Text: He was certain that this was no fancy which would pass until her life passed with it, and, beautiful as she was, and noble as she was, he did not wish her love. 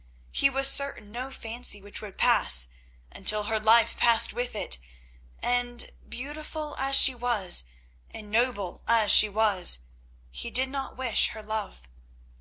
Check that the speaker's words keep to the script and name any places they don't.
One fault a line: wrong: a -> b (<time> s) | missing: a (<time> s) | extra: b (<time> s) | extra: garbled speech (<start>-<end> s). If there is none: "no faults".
missing: that this was (1.1 s)